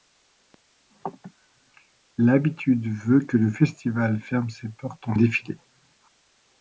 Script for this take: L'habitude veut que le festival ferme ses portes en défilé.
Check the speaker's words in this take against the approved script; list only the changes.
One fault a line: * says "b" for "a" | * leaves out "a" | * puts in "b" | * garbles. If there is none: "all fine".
all fine